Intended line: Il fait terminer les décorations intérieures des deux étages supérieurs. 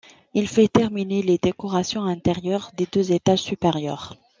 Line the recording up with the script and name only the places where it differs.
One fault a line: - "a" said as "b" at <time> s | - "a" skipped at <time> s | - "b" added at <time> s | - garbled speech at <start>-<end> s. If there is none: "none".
none